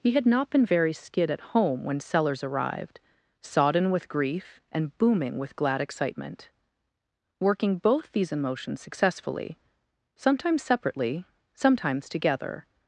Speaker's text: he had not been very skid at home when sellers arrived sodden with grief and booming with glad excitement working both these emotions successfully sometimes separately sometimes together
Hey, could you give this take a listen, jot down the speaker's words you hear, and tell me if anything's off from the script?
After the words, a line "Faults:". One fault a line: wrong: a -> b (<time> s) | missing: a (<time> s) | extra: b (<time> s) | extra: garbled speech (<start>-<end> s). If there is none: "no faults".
he had not been very skid at home when sellers arrived sodden with grief and booming with glad excitement working both these emotions successfully sometimes separately sometimes together
Faults:
no faults